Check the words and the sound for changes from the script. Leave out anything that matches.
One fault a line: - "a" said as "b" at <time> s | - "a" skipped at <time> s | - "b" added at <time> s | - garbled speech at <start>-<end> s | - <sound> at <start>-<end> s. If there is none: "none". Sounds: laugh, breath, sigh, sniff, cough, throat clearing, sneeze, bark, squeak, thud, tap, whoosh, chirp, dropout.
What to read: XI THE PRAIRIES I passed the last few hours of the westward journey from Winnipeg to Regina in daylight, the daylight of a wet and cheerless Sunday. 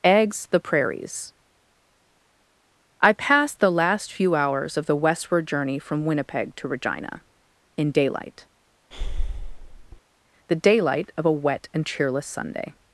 - "XI" said as "Eggs" at 0.0 s
- breath at 8.9-10.0 s